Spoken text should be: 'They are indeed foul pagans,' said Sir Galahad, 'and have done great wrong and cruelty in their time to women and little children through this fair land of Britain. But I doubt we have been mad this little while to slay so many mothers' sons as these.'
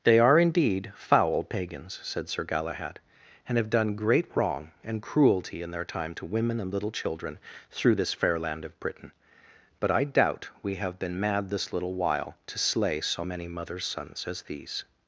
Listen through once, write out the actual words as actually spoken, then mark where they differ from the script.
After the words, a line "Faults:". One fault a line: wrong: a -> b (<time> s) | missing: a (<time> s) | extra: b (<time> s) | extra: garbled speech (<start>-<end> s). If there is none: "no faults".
'They are indeed foul pagans,' said Sir Galahad, 'and have done great wrong and cruelty in their time to women and little children through this fair land of Britain. But I doubt we have been mad this little while to slay so many mothers' sons as these.'
Faults:
no faults